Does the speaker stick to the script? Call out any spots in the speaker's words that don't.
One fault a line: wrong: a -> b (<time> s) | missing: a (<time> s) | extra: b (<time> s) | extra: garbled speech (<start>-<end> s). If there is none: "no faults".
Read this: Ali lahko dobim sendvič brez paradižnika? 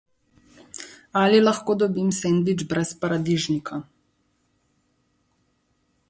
no faults